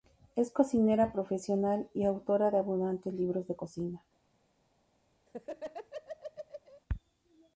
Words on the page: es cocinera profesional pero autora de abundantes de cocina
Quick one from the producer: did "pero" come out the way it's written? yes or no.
no